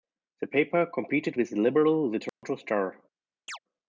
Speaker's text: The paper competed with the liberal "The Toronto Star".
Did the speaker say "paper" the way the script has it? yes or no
yes